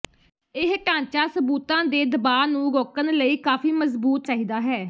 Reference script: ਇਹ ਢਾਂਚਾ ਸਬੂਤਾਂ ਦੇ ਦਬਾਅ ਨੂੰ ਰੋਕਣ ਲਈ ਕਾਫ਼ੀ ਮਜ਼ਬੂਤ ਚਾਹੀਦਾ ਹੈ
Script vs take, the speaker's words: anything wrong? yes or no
no